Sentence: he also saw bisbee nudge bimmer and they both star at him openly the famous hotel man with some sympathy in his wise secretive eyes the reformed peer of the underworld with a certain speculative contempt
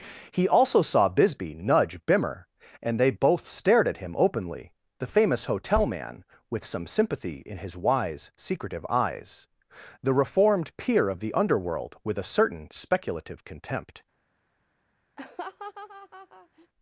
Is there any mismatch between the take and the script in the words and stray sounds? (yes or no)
yes